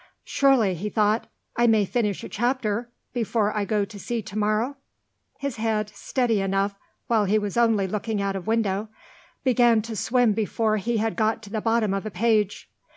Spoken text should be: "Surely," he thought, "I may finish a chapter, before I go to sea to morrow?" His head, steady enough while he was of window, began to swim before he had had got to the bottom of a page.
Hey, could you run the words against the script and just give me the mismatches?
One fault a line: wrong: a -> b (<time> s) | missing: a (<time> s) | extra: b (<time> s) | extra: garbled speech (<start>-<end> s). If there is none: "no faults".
extra: only looking out (7.6 s)
missing: had (11.2 s)